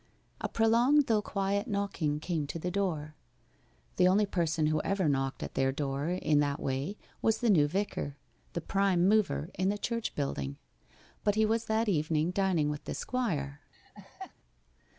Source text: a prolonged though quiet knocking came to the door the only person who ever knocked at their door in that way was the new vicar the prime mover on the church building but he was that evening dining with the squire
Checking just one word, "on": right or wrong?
wrong